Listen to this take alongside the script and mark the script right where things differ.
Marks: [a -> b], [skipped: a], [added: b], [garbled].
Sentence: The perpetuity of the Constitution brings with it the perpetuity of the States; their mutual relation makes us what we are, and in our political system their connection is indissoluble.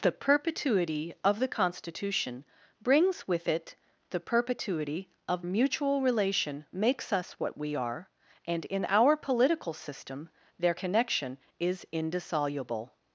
The perpetuity of the Constitution brings with it the perpetuity of [skipped: the States; their] mutual relation makes us what we are, and in our political system their connection is indissoluble.